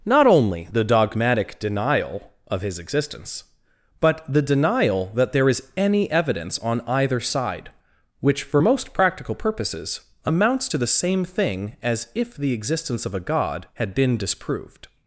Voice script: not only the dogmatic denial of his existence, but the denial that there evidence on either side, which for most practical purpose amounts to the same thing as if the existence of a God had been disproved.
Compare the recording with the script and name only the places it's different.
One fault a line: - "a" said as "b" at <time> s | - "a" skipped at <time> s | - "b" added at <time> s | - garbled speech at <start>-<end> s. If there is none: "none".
- "is any" added at 5.5 s
- "purpose" said as "purposes" at 9.3 s